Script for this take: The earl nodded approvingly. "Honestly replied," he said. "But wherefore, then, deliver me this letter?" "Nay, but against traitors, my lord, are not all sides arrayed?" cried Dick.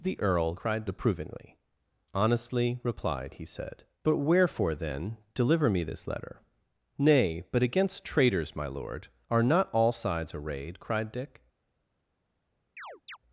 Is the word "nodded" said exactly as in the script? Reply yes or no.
no